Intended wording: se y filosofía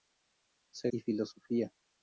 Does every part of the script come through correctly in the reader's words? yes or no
yes